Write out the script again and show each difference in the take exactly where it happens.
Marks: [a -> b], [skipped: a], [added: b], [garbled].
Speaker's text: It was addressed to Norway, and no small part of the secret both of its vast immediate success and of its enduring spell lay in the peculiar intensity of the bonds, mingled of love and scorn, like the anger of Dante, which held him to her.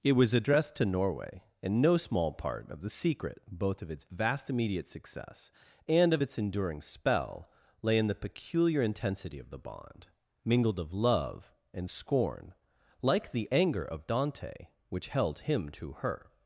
It was addressed to Norway, and no small part of the secret both of its vast immediate success and of its enduring spell lay in the peculiar intensity of the [bonds, -> bond] mingled of love and scorn, like the anger of Dante, which held him to her.